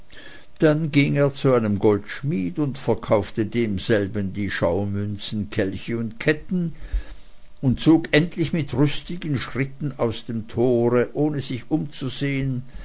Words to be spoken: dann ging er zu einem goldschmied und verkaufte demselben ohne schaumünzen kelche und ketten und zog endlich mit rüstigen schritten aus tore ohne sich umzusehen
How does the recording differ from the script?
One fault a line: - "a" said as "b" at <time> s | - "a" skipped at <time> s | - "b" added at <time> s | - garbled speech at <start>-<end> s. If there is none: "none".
- "ohne" said as "die" at 4.3 s
- "dem" added at 10.2 s